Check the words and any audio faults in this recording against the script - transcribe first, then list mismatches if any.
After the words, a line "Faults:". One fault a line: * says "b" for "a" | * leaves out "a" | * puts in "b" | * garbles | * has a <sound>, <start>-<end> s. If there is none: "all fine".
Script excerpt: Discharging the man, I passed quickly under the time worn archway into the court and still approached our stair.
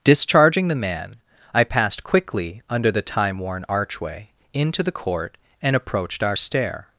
Discharging the man, I passed quickly under the time worn archway into the court and approached our stair.
Faults:
* leaves out "still"